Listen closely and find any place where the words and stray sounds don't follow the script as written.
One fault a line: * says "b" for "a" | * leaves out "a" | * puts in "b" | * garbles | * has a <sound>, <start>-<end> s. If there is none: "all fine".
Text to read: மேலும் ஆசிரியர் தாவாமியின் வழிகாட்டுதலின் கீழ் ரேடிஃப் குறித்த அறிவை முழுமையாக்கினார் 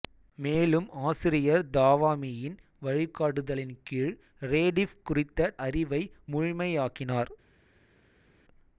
all fine